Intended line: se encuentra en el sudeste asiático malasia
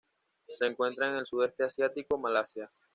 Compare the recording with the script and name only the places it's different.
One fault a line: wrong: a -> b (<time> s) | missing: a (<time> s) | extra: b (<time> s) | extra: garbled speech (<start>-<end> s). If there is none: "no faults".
no faults